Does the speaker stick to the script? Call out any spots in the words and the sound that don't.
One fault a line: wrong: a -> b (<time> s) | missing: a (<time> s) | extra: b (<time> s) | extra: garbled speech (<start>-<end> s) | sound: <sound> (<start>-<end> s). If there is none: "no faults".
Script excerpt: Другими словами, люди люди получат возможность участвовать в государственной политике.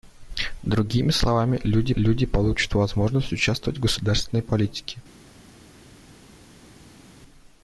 no faults